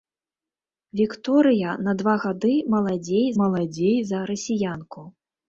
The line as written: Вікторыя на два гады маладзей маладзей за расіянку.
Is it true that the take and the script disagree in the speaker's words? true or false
false